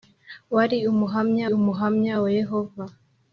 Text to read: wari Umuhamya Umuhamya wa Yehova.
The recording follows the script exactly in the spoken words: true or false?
true